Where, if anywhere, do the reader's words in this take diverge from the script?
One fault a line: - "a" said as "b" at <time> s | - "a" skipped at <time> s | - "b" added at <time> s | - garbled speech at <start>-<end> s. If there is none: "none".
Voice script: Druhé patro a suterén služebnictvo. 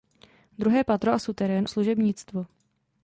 none